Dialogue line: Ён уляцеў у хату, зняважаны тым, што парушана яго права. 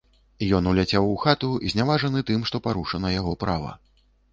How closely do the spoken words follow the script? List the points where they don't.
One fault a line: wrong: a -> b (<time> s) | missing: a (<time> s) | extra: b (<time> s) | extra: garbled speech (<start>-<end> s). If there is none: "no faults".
no faults